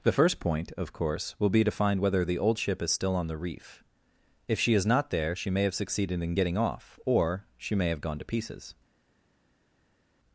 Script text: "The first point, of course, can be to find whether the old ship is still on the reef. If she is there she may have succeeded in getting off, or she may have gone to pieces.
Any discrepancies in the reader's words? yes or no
yes